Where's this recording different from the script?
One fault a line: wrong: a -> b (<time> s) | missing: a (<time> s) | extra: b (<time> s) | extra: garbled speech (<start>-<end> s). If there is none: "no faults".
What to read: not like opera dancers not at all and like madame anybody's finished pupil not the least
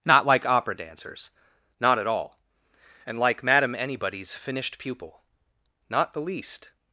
no faults